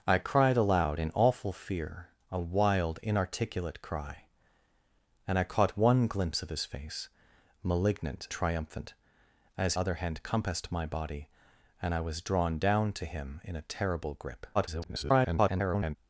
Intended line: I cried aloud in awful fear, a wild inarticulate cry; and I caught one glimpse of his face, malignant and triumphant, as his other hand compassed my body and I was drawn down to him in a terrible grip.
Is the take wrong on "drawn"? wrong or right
right